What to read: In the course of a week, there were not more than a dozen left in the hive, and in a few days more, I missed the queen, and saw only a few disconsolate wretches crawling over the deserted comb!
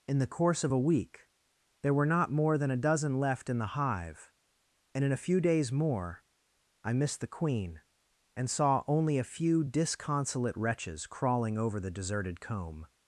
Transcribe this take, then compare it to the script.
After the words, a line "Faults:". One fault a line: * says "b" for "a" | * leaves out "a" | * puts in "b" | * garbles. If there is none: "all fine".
In the course of a week, there were not more than a dozen left in the hive, and in a few days more, I missed the queen, and saw only a few disconsolate wretches crawling over the deserted comb!
Faults:
all fine